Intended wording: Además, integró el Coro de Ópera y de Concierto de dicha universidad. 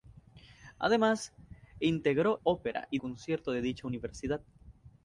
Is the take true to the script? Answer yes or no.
no